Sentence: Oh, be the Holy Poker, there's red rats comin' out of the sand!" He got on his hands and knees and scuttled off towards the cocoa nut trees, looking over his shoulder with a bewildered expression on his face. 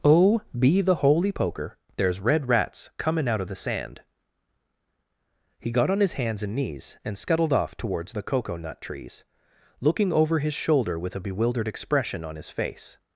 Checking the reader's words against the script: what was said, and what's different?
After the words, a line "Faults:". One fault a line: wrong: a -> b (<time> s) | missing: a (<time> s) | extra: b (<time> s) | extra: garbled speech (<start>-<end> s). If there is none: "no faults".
Oh, be the Holy Poker, there's red rats comin' out of the sand!" He got on his hands and knees and scuttled off towards the cocoa nut trees, looking over his shoulder with a bewildered expression on his face.
Faults:
no faults